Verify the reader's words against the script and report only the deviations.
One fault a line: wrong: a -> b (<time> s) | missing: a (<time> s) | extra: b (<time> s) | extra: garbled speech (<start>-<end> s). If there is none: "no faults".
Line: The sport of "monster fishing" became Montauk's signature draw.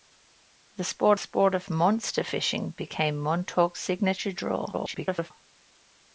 extra: sport (1.2 s)
extra: garbled speech (4.7-5.3 s)